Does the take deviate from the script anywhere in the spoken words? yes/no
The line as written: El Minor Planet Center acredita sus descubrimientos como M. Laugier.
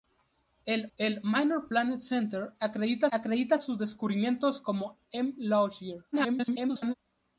yes